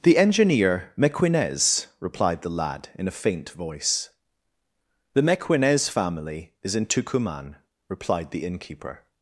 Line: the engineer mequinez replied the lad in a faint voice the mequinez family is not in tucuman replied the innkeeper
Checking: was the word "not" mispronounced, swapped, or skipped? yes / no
yes